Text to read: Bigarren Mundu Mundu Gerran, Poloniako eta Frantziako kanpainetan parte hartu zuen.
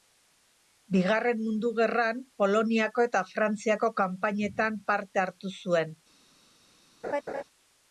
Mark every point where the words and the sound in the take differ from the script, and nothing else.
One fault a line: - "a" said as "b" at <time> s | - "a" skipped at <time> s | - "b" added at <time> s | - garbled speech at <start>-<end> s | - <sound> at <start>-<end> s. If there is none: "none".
- "Mundu" skipped at 1.7 s
- laugh at 7.0-7.4 s